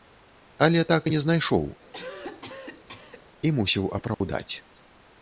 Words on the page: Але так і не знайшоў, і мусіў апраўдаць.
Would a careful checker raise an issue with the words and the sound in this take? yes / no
yes